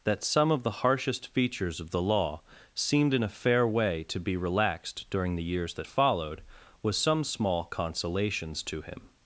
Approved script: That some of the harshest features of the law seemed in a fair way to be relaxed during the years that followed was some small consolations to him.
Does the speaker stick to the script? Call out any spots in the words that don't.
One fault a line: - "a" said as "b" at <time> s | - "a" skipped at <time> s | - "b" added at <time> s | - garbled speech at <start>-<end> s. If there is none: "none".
none